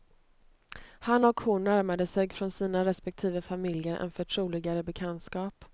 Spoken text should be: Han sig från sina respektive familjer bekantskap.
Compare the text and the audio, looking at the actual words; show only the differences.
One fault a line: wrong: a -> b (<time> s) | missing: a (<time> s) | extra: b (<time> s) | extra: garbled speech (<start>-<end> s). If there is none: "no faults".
extra: och hon närmade (1.2 s)
extra: en förtroligare (4.0 s)